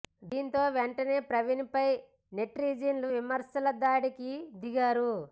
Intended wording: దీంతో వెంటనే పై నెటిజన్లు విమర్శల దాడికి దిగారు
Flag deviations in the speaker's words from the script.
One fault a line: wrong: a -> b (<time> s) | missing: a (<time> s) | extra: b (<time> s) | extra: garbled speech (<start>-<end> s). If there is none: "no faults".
extra: ప్రవీణ్ (1.3 s)